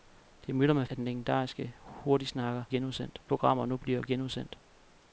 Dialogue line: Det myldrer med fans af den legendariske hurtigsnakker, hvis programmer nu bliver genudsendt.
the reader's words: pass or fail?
fail